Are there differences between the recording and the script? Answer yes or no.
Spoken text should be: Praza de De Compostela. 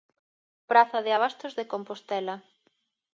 yes